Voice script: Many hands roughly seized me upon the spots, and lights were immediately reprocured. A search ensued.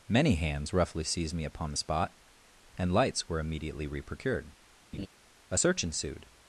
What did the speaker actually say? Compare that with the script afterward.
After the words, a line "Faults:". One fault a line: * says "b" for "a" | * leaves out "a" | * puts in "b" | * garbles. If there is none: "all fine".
Many hands roughly seized me upon the spot, and lights were immediately reprocured. A search ensued.
Faults:
* says "spot" for "spots"